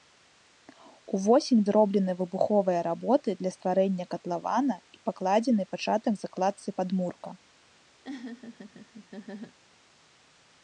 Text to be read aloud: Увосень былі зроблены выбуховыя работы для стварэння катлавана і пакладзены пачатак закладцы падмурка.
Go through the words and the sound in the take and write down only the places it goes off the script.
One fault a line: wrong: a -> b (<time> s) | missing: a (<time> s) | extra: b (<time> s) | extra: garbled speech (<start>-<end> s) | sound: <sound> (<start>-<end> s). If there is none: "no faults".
missing: былі (1.6 s)
sound: laugh (8.0-9.6 s)